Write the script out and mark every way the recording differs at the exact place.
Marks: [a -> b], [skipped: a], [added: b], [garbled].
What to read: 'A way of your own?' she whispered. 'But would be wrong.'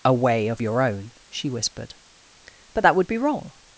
'A way of your own?' she whispered. 'But [added: that] would be wrong.'